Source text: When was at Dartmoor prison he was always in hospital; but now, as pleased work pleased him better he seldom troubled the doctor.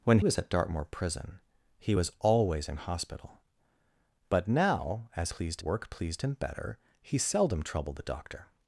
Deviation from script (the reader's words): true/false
false